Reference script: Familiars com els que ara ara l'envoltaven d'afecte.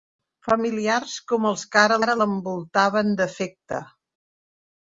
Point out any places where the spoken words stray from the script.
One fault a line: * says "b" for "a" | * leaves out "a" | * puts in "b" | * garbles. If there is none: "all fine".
all fine